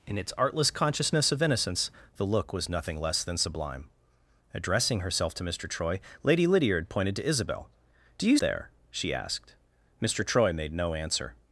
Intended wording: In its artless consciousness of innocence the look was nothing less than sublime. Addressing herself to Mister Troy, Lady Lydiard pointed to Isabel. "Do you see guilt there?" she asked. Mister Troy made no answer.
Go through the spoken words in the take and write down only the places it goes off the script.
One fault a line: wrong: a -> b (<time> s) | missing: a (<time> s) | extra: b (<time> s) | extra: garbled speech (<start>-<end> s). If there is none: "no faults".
missing: see guilt (8.4 s)